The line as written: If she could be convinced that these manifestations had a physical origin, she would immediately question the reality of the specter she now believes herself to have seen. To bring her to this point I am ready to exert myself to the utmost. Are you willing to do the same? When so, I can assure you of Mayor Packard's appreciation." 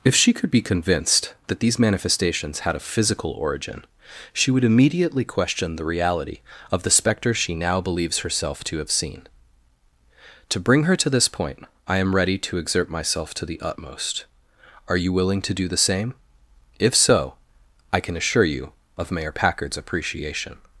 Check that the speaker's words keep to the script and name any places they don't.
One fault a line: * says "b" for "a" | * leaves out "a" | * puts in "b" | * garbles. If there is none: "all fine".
* says "If" for "When"